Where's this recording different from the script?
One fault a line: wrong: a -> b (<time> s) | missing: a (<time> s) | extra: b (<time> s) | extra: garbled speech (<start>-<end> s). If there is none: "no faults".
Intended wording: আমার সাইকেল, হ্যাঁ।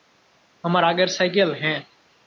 extra: আগের (0.8 s)